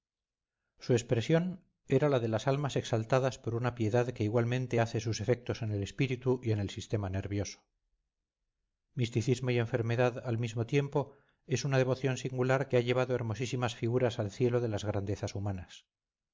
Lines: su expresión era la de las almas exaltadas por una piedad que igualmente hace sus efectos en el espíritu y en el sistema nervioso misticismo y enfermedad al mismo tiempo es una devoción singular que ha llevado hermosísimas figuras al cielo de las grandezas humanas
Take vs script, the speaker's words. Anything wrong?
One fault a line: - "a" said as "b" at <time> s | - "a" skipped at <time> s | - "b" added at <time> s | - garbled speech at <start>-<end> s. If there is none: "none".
none